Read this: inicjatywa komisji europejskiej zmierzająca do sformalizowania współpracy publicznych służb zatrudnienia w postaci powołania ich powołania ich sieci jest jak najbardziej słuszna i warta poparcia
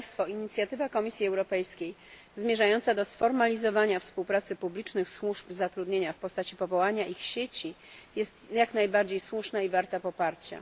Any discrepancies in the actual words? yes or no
yes